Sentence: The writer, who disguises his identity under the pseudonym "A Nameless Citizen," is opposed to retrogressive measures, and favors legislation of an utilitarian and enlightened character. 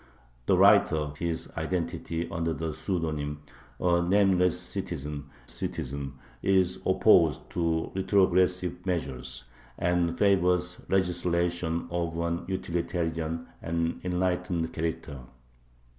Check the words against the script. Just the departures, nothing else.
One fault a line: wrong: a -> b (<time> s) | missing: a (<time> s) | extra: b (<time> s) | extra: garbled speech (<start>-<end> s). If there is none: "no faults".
missing: who disguises (1.1 s)
extra: Citizen (5.4 s)